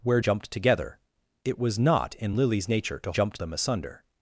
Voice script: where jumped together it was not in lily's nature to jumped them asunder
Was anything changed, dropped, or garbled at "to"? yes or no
no